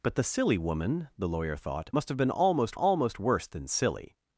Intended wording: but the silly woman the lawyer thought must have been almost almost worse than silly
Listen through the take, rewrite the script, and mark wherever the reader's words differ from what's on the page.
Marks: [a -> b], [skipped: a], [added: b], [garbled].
but the silly woman the lawyer thought must have been almost almost worse than silly